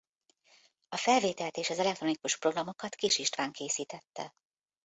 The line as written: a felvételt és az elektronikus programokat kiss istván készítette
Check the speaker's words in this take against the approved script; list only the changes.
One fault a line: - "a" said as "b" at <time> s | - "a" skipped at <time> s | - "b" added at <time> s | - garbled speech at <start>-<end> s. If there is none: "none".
none